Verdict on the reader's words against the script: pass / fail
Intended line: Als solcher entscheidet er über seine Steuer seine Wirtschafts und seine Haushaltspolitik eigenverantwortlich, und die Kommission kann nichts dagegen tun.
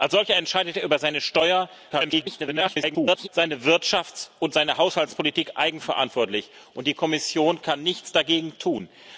fail